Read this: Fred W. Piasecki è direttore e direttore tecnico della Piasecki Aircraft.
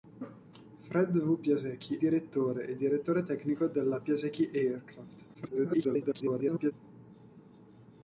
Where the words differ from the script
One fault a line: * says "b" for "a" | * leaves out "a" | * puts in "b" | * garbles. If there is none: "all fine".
* leaves out "è"
* garbles